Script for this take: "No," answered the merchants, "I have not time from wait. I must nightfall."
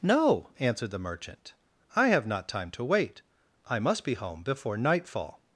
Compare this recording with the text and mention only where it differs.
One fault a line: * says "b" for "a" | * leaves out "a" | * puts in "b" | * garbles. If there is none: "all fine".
* says "merchant" for "merchants"
* says "to" for "from"
* puts in "be home before"